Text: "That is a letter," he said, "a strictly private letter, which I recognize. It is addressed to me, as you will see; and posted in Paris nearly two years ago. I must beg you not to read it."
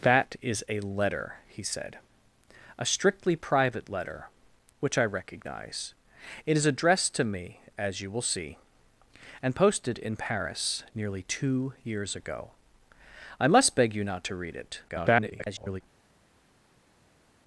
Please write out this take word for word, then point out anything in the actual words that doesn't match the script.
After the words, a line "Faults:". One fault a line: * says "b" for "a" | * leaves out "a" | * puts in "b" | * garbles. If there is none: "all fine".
"That is a letter," he said, "a strictly private letter, which I recognize. It is addressed to me, as you will see; and posted in Paris nearly two years ago. I must beg you not to read it." [garbled]
Faults:
* garbles